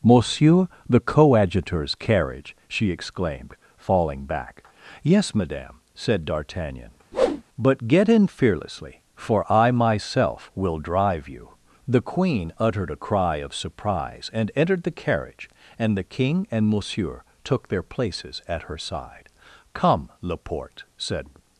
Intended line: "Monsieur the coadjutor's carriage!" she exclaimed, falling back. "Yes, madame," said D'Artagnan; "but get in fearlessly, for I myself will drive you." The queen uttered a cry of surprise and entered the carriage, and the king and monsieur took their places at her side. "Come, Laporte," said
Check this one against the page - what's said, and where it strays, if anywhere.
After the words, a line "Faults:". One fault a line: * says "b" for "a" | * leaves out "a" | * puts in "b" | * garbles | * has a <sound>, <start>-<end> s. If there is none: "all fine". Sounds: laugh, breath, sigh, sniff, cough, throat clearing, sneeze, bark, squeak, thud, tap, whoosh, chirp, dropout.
"Monsieur the coadjutor's carriage!" she exclaimed, falling back. "Yes, madame," said D'Artagnan; "but get in fearlessly, for I myself will drive you." The queen uttered a cry of surprise and entered the carriage, and the king and monsieur took their places at her side. "Come, Laporte," said
Faults:
* has a whoosh, 7.1-7.4 s